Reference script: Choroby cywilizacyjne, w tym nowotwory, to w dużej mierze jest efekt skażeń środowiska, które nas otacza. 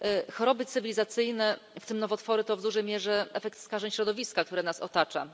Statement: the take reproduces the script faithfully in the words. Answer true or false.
false